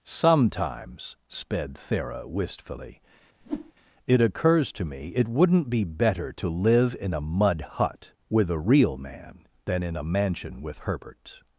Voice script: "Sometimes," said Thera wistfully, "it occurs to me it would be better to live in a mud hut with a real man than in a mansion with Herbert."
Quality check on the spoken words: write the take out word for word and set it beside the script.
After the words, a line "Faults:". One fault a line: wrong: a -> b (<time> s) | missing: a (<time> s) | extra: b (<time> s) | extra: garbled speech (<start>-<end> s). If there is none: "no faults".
"Sometimes," sped Thera wistfully, "it occurs to me it wouldn't be better to live in a mud hut with a real man than in a mansion with Herbert."
Faults:
wrong: said -> sped (1.3 s)
wrong: would -> wouldn't (5.3 s)